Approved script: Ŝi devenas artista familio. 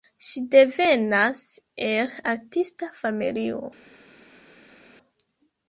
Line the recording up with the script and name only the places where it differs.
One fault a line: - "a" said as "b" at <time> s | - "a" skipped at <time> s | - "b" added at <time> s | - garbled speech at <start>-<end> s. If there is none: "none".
- "el" added at 1.9 s